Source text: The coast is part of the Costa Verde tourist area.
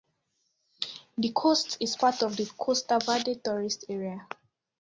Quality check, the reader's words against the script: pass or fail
pass